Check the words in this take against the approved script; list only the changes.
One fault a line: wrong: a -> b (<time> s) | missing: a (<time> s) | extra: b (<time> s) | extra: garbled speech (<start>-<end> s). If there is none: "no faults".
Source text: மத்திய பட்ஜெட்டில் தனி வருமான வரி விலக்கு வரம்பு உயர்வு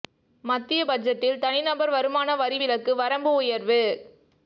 extra: நபர் (1.6 s)